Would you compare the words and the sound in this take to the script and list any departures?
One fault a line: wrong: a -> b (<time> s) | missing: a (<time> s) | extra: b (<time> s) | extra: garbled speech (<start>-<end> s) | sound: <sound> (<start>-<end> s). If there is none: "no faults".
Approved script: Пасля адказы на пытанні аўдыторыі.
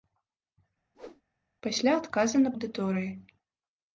sound: whoosh (0.9-1.2 s)
missing: пытанні (2.5 s)